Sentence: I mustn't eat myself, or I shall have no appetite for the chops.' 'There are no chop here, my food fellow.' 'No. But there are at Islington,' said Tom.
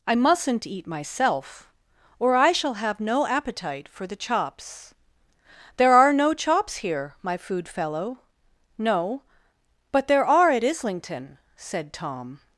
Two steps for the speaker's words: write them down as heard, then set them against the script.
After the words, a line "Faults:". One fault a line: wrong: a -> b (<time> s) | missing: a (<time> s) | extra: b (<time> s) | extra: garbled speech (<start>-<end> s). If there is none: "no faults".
I mustn't eat myself, or I shall have no appetite for the chops.' 'There are no chops here, my food fellow.' 'No. But there are at Islington,' said Tom.
Faults:
wrong: chop -> chops (6.3 s)